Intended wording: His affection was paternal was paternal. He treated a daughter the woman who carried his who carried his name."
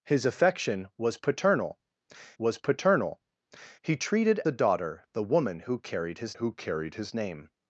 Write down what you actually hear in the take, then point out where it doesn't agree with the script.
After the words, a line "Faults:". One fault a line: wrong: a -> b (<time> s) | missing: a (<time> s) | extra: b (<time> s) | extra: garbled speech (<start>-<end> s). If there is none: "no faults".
His affection was paternal was paternal. He treated a daughter the woman who carried his who carried his name."
Faults:
no faults